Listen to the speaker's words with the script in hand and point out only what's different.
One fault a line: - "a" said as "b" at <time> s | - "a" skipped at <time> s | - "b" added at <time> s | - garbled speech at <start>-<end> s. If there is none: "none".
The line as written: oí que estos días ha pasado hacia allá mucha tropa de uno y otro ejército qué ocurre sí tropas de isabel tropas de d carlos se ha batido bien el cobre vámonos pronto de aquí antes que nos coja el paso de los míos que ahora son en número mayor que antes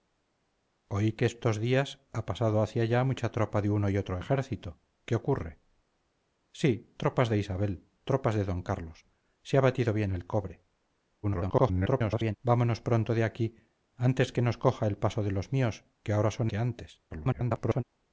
- garbled speech at 11.2-12.4 s
- "en número mayor" skipped at 16.5 s
- garbled speech at 17.1-17.8 s